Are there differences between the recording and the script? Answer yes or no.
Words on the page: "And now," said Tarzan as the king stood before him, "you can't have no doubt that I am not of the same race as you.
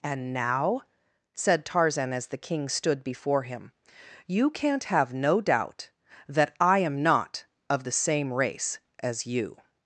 no